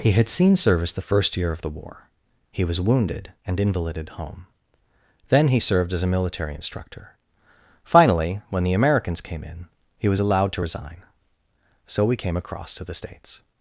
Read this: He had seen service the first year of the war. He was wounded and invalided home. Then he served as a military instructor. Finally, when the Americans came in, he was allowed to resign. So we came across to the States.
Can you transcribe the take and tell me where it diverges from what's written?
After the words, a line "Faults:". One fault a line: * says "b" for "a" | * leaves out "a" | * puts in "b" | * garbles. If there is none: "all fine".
He had seen service the first year of the war. He was wounded and invalided home. Then he served as a military instructor. Finally, when the Americans came in, he was allowed to resign. So we came across to the States.
Faults:
all fine